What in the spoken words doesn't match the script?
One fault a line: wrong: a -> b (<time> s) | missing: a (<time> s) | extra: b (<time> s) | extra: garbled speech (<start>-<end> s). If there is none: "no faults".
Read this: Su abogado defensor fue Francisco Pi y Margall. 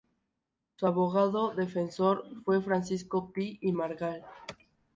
no faults